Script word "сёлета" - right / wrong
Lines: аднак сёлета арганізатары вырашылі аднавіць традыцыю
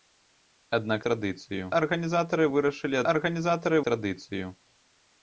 wrong